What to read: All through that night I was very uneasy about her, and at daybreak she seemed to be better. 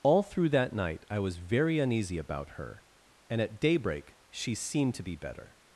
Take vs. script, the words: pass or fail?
pass